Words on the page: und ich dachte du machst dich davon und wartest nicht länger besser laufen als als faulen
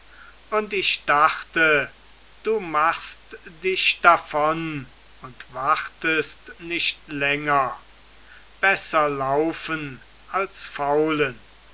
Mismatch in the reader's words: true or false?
true